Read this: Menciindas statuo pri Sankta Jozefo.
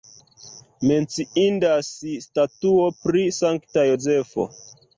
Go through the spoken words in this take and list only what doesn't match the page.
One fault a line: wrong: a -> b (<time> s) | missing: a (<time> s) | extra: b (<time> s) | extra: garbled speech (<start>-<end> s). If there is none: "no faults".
no faults